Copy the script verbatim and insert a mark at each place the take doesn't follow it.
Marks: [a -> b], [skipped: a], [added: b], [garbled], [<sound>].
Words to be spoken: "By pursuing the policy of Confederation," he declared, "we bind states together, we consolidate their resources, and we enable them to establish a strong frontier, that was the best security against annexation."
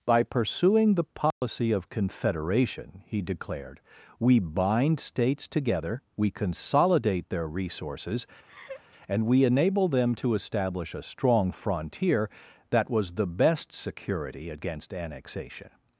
"By pursuing the policy [dropout] of Confederation," he declared, "we bind states together, we consolidate their resources, [laugh] and we enable them to establish a strong frontier, that was the best security against annexation."